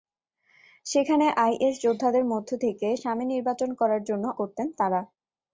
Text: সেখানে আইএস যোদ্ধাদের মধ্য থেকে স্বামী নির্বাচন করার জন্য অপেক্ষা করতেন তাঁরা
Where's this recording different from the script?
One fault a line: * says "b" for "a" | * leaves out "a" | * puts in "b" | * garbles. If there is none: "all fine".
* leaves out "অপেক্ষা"